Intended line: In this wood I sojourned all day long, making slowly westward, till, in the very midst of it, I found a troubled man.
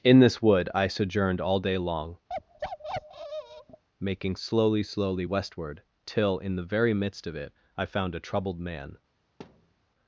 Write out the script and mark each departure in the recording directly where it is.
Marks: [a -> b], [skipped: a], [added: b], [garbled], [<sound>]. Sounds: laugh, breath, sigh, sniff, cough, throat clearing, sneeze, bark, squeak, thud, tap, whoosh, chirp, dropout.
In this wood I sojourned all day long, [bark] making slowly [added: slowly] westward, till, in the very midst of it, I found a troubled man. [thud]